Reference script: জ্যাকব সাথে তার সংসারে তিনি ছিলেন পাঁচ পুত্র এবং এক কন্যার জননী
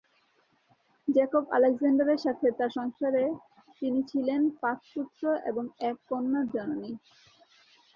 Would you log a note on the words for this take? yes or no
yes